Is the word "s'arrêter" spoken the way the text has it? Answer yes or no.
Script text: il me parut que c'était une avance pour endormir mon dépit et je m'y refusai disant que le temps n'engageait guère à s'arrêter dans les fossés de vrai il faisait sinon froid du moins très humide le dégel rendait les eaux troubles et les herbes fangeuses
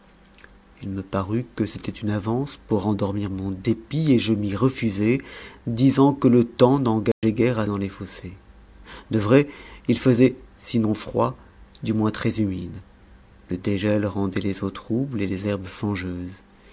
no